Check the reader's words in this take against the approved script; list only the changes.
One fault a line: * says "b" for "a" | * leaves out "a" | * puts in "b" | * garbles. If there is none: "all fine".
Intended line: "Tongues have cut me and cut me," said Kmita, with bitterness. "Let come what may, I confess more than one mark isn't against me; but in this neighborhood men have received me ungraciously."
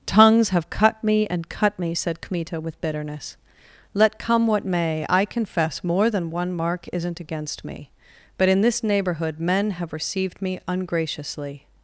all fine